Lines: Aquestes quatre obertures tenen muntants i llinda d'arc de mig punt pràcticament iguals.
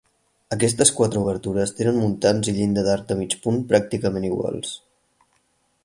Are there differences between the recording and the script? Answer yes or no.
no